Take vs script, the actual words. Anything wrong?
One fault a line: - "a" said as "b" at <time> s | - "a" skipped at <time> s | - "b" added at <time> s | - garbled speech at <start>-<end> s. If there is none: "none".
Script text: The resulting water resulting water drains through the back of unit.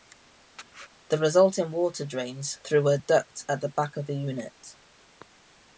- "resulting water drains through" said as "drains through a duct at" at 2.1 s
- "the" added at 4.0 s